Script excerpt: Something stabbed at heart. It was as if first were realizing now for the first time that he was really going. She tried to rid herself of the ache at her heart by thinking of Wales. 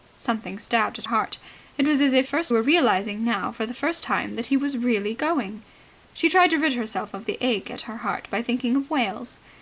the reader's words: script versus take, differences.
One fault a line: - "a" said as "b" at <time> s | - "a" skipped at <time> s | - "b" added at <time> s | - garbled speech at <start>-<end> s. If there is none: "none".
none